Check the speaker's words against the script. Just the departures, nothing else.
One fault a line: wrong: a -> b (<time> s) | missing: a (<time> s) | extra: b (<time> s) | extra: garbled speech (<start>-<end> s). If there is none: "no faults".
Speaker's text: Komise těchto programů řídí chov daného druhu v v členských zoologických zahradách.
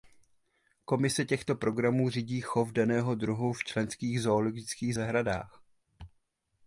missing: v (3.6 s)